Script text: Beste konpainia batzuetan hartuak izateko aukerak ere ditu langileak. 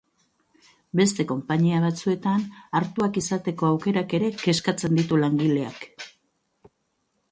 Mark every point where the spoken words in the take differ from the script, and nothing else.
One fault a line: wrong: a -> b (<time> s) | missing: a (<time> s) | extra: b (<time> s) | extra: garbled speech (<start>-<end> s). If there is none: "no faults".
extra: kezkatzen (4.4 s)